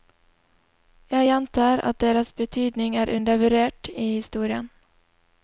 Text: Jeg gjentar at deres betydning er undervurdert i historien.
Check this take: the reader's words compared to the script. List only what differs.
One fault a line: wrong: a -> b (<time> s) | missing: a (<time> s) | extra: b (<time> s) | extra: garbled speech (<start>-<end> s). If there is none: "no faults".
no faults